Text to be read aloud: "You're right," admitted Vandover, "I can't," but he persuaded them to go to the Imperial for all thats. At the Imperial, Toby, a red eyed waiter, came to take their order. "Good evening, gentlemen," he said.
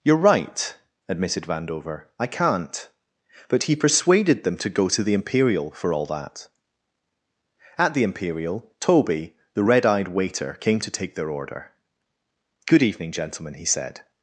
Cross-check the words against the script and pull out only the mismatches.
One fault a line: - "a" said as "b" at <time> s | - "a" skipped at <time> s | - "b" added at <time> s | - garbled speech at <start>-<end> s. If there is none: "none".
- "thats" said as "that" at 6.1 s
- "a" said as "the" at 9.5 s